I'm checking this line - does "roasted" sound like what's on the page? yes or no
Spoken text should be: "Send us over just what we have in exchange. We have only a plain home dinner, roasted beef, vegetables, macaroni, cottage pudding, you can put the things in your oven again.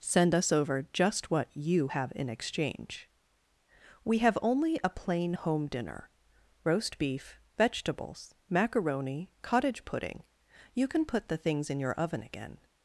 no